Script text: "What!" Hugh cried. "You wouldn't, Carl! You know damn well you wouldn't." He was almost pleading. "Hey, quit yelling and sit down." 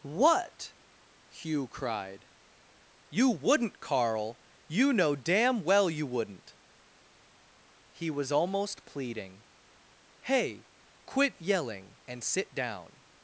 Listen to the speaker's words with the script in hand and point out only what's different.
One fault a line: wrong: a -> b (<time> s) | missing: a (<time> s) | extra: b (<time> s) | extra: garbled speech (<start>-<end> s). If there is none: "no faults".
no faults